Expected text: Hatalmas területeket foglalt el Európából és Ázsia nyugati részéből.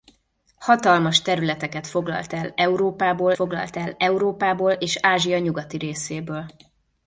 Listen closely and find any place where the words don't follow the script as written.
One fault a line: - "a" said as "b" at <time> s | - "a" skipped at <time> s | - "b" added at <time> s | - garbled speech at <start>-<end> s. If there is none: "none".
- "foglalt el Európából" added at 3.3 s